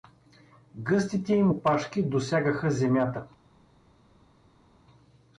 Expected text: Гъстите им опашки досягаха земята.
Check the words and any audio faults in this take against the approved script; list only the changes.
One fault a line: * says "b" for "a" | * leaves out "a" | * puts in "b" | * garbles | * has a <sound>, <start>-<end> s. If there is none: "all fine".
all fine